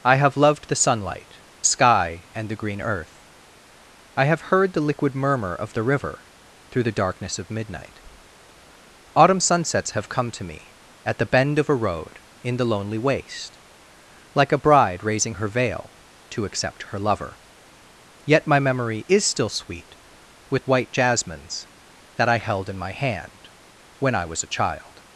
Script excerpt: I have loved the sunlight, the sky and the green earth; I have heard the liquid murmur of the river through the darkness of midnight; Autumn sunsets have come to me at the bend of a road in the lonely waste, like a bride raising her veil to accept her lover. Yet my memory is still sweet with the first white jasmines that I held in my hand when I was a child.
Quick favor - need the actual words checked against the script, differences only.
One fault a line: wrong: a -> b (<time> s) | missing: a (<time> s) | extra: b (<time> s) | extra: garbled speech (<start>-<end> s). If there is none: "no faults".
missing: the (1.4 s)
missing: the first (20.7 s)